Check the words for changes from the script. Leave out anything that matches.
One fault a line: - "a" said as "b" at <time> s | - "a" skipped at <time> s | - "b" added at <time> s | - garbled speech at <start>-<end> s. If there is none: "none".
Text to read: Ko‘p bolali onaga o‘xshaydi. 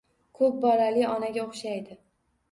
none